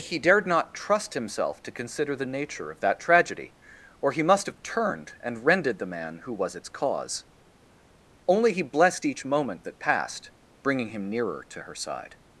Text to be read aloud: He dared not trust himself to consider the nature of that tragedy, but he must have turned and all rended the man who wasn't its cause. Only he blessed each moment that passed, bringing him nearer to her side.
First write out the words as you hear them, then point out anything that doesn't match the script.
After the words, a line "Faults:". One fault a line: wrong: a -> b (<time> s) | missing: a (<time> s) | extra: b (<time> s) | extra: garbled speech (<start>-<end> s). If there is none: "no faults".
He dared not trust himself to consider the nature of that tragedy, or he must have turned and rended the man who was its cause. Only he blessed each moment that passed, bringing him nearer to her side.
Faults:
wrong: but -> or (4.0 s)
missing: all (5.5 s)
wrong: wasn't -> was (6.3 s)